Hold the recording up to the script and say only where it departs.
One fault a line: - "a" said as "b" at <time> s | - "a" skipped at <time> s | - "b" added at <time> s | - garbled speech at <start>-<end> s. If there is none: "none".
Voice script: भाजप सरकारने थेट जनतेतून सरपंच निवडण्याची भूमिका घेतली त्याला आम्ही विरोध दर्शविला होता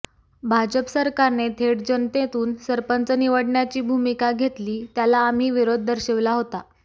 none